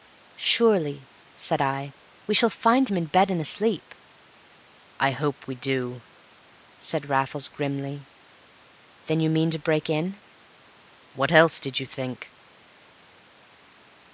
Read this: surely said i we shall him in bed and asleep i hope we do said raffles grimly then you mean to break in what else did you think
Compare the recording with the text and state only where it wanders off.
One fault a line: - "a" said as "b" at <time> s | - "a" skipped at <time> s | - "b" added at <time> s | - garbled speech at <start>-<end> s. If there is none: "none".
- "find" added at 2.5 s